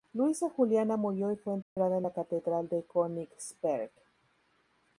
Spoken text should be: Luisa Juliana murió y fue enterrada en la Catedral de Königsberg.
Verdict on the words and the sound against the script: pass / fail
fail